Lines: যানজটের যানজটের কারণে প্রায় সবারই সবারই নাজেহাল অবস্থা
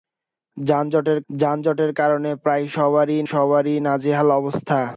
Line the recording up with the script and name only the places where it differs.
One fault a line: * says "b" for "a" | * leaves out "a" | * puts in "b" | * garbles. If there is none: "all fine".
all fine